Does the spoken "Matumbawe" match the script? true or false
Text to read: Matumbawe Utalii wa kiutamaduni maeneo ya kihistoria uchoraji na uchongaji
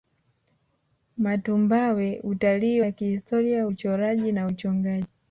true